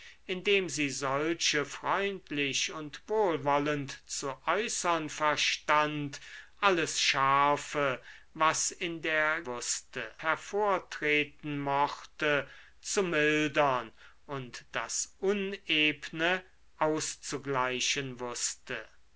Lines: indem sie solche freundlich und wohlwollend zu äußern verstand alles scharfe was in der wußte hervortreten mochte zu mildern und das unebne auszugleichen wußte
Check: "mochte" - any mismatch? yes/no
no